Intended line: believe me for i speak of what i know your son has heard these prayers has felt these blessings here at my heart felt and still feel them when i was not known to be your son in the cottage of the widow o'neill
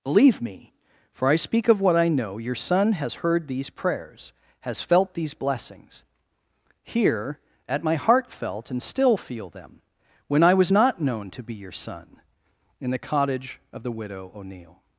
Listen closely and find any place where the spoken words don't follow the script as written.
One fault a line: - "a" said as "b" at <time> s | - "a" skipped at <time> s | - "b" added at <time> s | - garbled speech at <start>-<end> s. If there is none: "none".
none